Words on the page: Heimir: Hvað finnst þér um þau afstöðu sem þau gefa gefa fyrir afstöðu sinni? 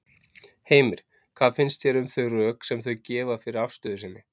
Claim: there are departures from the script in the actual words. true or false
true